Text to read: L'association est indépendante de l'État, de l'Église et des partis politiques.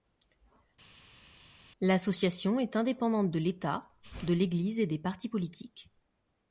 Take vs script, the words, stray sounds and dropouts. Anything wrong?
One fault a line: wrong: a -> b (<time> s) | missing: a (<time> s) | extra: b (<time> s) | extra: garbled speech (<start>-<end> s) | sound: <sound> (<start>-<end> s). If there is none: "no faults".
no faults